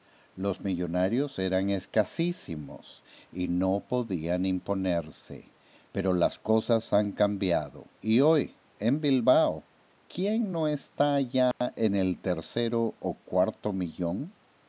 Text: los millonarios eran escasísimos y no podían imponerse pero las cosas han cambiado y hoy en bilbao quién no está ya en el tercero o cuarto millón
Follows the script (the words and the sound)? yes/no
no